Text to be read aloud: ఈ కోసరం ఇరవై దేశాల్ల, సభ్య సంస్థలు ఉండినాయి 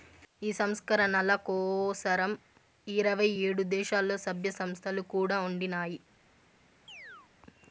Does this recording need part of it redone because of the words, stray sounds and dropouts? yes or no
yes